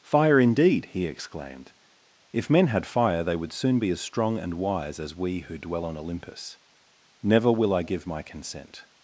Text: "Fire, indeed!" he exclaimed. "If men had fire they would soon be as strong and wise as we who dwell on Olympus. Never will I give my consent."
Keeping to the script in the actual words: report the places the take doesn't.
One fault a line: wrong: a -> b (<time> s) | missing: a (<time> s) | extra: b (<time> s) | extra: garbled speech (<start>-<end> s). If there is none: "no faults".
no faults